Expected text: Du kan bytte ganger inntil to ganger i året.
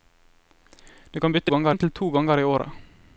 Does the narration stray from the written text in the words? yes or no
no